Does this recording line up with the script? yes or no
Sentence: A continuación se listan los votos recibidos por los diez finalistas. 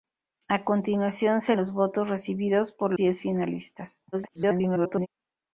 no